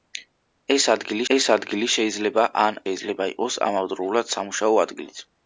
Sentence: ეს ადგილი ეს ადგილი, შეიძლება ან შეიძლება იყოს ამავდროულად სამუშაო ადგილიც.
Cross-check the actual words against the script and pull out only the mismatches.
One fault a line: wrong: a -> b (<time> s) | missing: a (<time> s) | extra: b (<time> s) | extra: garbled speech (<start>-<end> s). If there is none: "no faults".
no faults